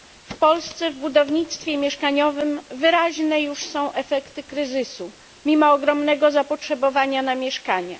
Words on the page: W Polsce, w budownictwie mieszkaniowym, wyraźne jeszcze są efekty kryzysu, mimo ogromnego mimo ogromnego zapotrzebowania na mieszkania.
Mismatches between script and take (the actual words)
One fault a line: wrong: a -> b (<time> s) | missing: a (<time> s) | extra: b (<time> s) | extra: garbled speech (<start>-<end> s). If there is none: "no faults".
wrong: jeszcze -> już (3.4 s)
missing: mimo ogromnego (6.3 s)